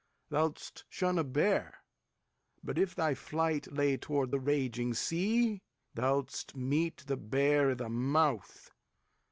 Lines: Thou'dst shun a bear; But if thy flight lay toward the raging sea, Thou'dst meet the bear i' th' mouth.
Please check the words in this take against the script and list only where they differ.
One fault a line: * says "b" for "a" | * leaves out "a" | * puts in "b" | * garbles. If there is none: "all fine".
all fine